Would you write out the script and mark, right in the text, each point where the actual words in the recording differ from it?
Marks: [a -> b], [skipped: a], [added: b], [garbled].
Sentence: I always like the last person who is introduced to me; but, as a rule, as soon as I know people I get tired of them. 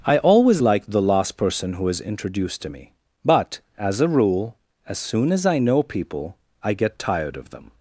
I always like the last person who is introduced to me; but, as a rule, as soon as I know people I get tired of them.